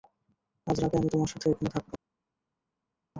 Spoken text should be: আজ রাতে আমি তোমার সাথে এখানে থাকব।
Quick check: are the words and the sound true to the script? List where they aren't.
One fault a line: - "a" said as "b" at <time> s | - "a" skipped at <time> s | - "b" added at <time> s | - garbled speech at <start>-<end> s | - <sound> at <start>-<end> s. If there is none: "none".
none